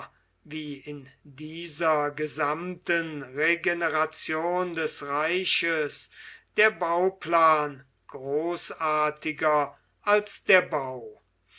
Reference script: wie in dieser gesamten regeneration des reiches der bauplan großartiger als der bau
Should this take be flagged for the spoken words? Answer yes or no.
no